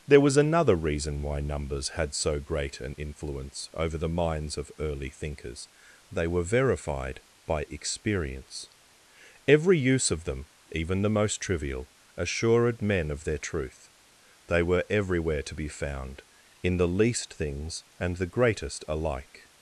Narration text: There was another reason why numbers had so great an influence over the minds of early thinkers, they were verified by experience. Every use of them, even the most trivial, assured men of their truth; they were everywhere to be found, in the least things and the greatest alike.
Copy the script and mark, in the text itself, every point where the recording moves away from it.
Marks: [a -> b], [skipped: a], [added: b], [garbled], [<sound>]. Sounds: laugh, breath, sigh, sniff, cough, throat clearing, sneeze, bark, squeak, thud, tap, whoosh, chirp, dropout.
There was another reason why numbers had so great an influence over the minds of early thinkers, they were verified by experience. Every use of them, even the most trivial, assured men of their truth; they were everywhere to be found, in the least things and the greatest alike.